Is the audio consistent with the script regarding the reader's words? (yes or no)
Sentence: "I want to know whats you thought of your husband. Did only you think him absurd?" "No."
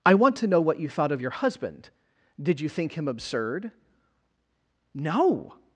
no